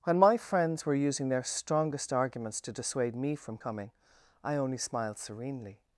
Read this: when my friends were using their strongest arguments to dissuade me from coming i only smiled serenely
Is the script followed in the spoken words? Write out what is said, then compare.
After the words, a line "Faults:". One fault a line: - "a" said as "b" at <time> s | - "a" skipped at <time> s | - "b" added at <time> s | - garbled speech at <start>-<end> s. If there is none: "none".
when my friends were using their strongest arguments to dissuade me from coming i only smiled serenely
Faults:
none